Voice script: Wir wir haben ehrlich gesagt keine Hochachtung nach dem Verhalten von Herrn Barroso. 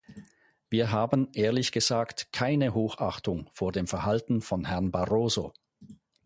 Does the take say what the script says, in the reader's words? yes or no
no